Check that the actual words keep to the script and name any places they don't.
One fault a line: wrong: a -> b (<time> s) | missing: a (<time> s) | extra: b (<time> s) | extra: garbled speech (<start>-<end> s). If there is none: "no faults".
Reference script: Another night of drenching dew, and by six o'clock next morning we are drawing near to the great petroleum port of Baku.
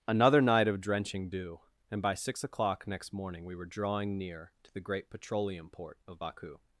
wrong: are -> were (3.5 s)